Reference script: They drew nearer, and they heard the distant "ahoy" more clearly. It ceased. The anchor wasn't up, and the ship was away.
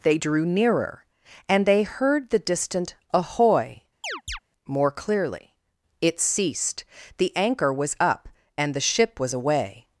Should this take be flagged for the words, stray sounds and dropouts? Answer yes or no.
yes